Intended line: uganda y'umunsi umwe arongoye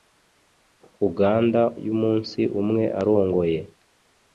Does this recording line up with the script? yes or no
yes